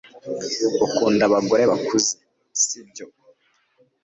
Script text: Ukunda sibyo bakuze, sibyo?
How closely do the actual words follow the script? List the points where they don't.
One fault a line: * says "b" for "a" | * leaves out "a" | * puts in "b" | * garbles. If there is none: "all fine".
* says "abagore" for "sibyo"